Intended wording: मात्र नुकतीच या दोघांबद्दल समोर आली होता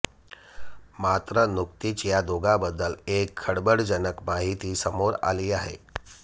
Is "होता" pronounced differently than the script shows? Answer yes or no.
yes